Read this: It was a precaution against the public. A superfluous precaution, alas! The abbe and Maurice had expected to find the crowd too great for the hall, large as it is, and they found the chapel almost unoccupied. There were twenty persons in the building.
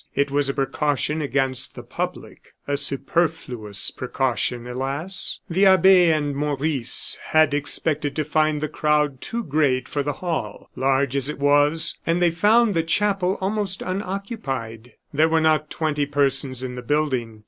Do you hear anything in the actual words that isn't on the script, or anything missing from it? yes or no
yes